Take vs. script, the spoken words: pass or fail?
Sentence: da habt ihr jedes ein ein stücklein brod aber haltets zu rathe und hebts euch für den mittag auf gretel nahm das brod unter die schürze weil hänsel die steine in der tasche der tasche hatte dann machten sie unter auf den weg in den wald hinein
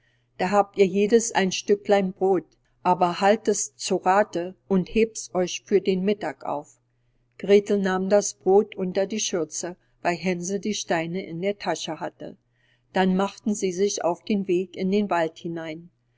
fail